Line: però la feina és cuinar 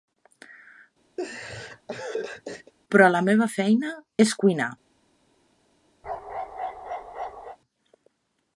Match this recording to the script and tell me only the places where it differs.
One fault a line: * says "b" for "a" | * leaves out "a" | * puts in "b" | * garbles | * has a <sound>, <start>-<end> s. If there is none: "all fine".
* has a laugh, 1.2-2.7 s
* puts in "meva"
* has a bark, 6.0-7.6 s